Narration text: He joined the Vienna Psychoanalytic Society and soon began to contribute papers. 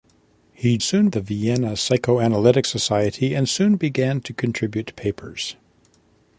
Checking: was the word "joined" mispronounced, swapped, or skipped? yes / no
yes